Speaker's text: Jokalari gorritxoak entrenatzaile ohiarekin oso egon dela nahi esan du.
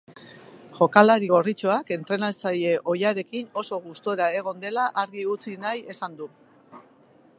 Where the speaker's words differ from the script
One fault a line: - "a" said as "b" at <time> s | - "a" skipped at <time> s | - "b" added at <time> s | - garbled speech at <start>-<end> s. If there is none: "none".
- "gustura" added at 3.9 s
- "argi utzi" added at 5.0 s